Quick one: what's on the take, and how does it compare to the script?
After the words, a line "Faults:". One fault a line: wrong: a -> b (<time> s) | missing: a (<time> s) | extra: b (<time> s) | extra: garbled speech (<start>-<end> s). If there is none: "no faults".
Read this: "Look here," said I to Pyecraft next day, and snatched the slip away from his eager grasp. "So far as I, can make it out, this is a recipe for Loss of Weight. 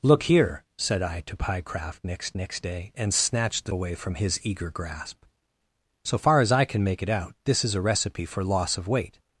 "Look here," said I to Pyecraft next next day, and snatched the away from his eager grasp. "So far as I, can make it out, this is a recipe for Loss of Weight.
Faults:
extra: next (2.3 s)
missing: slip (3.7 s)